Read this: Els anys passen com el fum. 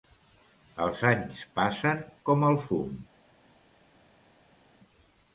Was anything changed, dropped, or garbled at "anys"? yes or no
no